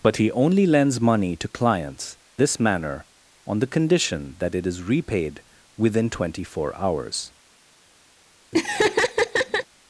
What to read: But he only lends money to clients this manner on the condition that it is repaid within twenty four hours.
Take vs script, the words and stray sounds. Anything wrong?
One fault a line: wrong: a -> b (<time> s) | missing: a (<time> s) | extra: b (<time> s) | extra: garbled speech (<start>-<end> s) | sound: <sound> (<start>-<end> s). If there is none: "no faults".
sound: laugh (8.5-9.7 s)